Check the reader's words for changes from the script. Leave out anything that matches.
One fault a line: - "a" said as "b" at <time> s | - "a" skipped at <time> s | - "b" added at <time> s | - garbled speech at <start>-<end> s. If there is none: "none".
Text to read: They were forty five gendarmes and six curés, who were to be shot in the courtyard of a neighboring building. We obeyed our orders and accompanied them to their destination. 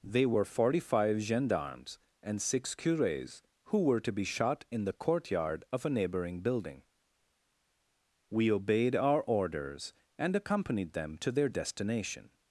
none